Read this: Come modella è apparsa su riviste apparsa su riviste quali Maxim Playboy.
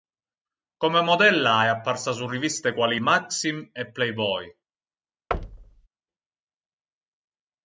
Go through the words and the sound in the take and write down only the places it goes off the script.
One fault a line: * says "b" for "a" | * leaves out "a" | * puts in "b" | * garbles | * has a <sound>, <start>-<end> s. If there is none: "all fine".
* leaves out "apparsa su riviste"
* puts in "e"
* has a thud, 5.3-5.9 s